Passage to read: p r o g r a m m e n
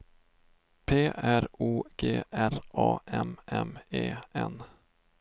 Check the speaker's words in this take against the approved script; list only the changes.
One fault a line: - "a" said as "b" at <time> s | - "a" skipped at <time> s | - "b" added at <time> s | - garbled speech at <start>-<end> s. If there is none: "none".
none